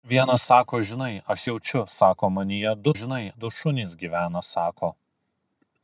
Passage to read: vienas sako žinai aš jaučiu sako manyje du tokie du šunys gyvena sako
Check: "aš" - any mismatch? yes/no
no